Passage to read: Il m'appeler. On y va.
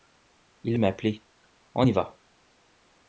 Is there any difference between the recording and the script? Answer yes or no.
no